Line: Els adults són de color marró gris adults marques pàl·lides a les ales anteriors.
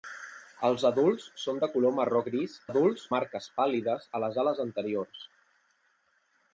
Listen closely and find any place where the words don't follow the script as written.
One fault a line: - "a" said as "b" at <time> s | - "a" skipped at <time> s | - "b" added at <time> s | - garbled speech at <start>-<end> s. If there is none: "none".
none